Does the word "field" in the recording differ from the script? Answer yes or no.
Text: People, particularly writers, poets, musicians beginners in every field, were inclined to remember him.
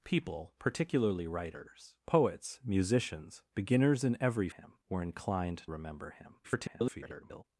yes